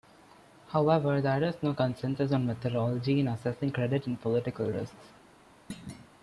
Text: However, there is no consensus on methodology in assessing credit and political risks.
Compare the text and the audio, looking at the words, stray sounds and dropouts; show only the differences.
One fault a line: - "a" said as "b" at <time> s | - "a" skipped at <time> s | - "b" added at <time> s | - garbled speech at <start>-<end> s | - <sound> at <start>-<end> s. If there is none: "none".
- thud at 5.7-6.1 s